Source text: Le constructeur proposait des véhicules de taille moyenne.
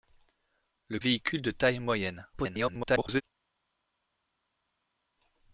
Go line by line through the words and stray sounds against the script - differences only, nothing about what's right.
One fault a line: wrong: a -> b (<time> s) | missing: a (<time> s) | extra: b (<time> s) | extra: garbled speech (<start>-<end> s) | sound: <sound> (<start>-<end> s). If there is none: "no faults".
missing: constructeur proposait des (1.0 s)
extra: garbled speech (2.3-3.2 s)